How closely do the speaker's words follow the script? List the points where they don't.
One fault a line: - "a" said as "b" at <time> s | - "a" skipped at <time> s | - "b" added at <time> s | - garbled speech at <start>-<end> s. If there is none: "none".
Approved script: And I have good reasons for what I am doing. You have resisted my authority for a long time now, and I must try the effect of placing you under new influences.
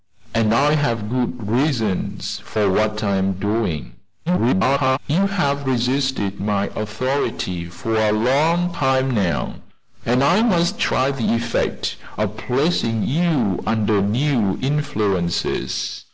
- garbled speech at 4.3-5.0 s